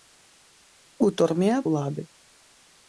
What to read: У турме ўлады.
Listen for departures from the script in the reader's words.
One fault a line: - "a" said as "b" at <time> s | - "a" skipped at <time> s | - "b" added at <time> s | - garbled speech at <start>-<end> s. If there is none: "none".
none